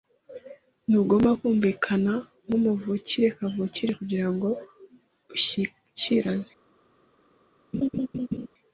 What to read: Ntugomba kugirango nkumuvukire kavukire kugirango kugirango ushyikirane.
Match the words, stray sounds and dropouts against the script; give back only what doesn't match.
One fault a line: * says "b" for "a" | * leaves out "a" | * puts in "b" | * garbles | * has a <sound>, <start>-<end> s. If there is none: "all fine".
* says "kumvikana" for "kugirango"
* leaves out "kugirango"
* has a laugh, 7.7-8.5 s